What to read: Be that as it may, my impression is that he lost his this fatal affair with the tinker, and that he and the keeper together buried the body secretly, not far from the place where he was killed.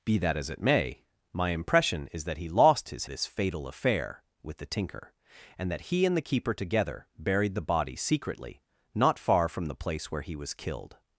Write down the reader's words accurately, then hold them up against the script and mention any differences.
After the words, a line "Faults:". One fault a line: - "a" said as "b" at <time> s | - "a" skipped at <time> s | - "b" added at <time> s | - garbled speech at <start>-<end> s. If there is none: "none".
Be that as it may, my impression is that he lost his this fatal affair with the tinker, and that he and the keeper together buried the body secretly, not far from the place where he was killed.
Faults:
none